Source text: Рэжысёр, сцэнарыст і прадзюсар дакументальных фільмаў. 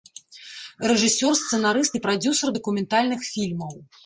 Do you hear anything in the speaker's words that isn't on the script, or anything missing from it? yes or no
no